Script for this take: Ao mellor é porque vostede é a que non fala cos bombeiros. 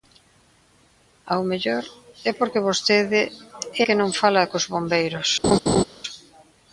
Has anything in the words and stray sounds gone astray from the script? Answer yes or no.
yes